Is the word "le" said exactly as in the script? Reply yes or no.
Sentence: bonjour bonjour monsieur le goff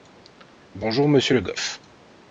yes